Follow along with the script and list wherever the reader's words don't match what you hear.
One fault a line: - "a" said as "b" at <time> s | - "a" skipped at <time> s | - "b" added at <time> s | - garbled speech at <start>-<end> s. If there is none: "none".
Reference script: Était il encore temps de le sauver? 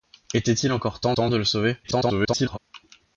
- "temps" added at 1.1 s
- garbled speech at 1.8-2.6 s